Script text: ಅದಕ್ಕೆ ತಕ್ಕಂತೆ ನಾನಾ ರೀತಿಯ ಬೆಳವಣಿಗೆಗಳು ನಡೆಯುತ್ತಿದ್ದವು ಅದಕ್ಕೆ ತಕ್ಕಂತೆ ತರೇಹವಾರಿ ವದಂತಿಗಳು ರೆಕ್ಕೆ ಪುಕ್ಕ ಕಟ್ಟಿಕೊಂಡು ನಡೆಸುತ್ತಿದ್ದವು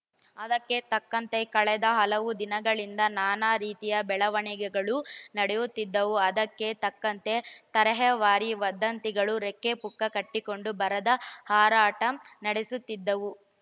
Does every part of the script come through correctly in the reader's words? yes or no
no